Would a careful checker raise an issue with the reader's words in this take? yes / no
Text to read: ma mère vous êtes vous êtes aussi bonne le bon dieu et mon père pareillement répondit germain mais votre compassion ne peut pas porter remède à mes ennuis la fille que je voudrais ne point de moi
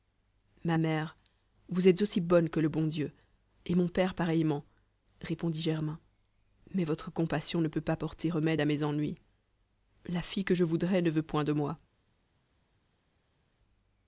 yes